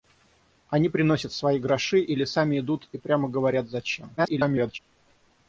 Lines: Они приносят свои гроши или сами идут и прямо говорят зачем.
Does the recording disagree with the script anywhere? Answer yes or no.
yes